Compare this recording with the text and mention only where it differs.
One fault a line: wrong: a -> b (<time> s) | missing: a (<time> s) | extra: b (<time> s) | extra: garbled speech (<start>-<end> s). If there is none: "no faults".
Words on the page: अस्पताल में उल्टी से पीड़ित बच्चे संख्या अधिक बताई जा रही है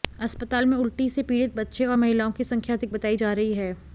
extra: और महिलाओं की (1.9 s)